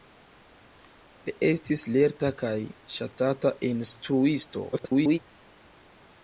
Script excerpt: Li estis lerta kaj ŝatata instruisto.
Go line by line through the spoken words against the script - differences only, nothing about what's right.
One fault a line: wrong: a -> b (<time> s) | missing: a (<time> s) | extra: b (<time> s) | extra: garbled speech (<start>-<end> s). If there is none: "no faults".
extra: garbled speech (4.7-5.2 s)